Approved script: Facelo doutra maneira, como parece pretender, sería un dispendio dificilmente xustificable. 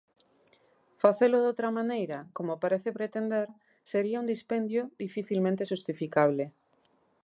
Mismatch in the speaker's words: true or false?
false